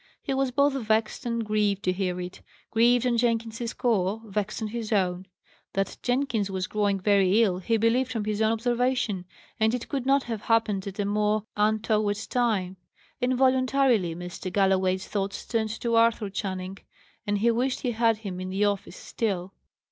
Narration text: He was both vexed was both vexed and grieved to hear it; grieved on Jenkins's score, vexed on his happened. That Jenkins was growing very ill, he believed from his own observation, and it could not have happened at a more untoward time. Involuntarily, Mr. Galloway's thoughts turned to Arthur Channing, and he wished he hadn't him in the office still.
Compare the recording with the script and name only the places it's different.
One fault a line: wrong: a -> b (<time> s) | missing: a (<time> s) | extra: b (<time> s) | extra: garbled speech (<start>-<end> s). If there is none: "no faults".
missing: was both vexed (1.3 s)
wrong: happened -> own (4.9 s)
wrong: hadn't -> had (17.9 s)